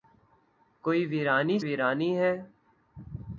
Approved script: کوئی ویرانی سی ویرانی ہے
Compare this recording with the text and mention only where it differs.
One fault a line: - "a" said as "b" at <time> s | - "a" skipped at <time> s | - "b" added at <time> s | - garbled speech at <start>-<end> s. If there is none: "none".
- "سی" skipped at 1.6 s